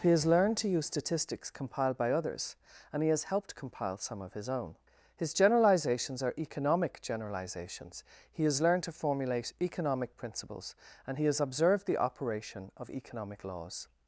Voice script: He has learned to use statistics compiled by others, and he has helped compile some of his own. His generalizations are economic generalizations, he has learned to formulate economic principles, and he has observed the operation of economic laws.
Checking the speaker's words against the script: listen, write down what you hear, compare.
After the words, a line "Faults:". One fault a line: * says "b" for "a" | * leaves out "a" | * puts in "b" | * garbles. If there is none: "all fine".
He has learned to use statistics compiled by others, and he has helped compile some of his own. His generalizations are economic generalizations, he has learned to formulate economic principles, and he has observed the operation of economic laws.
Faults:
all fine